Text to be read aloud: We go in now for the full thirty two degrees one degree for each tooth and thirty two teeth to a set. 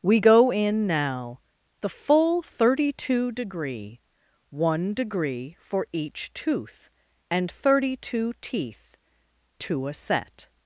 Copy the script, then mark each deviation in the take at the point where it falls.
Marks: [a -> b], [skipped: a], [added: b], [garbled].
We go in now [skipped: for] the full thirty two [degrees -> degree] one degree for each tooth and thirty two teeth to a set.